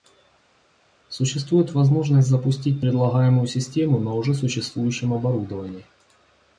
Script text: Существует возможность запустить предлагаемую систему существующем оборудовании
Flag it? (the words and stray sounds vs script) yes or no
yes